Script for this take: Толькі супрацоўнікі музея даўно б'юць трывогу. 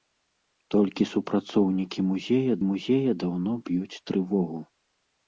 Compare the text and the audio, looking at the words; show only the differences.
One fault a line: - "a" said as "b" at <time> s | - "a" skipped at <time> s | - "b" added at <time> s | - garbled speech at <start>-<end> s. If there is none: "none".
- "музея" added at 2.7 s